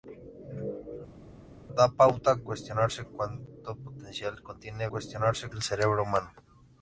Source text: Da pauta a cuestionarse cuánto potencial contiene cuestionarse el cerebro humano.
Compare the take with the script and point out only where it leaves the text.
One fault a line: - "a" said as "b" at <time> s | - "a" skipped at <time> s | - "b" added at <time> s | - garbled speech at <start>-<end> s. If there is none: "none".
none